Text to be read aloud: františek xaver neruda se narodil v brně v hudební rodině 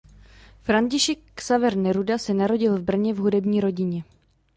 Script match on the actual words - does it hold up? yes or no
yes